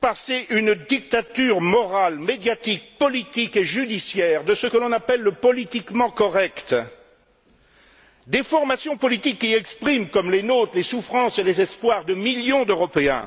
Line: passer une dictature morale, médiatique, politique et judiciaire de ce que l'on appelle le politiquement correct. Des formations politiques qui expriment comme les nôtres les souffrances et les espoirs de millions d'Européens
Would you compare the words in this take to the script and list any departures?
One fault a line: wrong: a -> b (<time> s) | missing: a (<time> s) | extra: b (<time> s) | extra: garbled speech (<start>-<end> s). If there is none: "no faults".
no faults